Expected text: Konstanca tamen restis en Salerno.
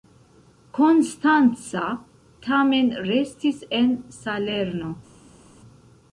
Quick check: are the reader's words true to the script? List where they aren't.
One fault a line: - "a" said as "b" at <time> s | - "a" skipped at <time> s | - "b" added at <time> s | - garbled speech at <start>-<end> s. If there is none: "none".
none